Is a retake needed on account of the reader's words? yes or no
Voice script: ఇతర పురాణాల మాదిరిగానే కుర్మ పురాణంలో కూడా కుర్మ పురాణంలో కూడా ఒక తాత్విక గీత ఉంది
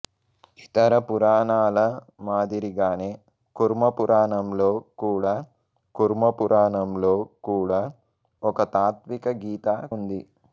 no